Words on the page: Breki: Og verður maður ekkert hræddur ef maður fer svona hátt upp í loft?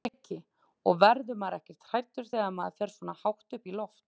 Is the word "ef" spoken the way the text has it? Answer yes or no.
no